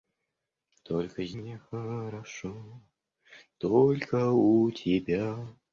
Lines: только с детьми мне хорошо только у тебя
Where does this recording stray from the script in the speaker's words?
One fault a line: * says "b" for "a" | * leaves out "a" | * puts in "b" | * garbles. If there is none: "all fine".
* leaves out "детьми"